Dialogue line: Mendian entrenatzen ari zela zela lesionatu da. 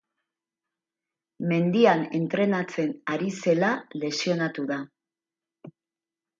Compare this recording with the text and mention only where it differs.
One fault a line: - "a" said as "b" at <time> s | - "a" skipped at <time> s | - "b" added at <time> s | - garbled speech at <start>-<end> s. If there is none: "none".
- "zela" skipped at 3.7 s